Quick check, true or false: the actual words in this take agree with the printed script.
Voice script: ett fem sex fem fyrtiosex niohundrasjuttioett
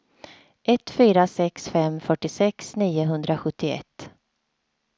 false